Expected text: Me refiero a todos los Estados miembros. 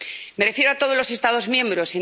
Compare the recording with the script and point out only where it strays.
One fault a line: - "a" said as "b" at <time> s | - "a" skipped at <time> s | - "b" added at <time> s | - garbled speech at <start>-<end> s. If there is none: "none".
none